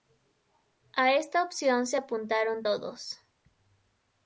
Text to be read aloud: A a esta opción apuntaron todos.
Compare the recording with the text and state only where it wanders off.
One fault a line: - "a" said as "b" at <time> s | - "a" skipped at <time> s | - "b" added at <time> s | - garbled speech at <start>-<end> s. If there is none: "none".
- "a" skipped at 1.1 s
- "se" added at 1.9 s